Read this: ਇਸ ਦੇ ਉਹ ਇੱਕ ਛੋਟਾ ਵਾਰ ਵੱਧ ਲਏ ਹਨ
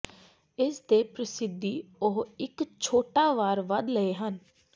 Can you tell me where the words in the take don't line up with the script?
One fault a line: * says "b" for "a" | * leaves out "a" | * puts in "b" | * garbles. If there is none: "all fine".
* puts in "ਪ੍ਰਸਿੱਧੀ"